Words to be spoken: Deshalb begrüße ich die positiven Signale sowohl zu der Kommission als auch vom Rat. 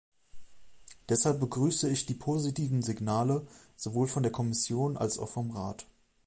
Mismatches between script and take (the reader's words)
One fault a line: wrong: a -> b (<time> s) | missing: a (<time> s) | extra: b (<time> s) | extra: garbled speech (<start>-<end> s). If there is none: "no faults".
wrong: zu -> von (4.1 s)